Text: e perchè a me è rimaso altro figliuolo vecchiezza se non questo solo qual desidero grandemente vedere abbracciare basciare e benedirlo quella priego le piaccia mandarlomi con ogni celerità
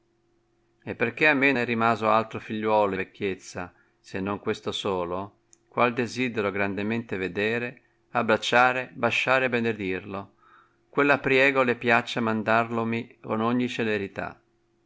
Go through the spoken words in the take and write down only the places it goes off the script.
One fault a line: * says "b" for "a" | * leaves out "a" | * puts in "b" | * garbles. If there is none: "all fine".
all fine